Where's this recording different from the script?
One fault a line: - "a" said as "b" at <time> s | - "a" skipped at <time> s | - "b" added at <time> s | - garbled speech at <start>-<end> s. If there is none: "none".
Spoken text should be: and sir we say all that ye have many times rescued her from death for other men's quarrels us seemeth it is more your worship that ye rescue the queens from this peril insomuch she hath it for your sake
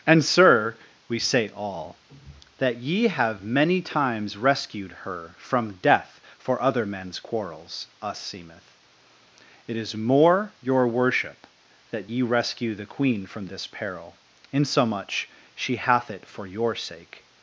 - "queens" said as "queen" at 12.9 s